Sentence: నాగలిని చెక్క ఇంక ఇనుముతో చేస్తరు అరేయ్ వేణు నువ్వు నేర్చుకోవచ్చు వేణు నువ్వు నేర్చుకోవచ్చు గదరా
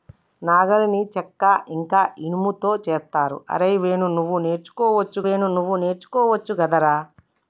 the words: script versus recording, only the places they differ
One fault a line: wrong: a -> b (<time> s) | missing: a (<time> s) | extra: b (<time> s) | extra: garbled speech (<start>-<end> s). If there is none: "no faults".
no faults